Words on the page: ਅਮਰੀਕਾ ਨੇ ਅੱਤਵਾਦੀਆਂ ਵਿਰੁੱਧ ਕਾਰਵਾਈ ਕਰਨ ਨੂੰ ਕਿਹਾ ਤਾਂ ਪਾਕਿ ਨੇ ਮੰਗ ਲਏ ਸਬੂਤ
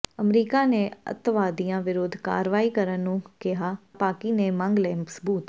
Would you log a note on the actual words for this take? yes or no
yes